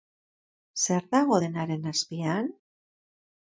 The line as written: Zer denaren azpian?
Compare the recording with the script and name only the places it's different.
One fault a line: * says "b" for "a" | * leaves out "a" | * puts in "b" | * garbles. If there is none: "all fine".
* puts in "dago"